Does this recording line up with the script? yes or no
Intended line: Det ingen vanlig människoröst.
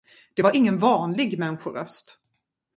no